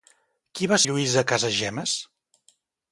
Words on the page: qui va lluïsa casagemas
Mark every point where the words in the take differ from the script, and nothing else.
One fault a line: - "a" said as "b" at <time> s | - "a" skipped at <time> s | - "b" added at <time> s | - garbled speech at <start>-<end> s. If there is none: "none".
none